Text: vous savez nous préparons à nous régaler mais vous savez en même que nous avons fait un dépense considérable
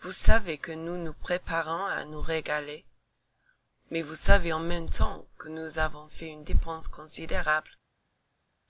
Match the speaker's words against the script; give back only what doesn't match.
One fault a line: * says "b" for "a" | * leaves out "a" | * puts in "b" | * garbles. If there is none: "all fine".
* puts in "que"
* puts in "nous"
* puts in "temps"
* says "une" for "un"